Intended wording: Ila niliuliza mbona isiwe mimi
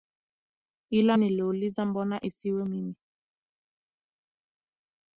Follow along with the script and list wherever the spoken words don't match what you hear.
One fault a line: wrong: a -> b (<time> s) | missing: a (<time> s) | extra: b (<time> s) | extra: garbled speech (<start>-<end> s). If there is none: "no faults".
no faults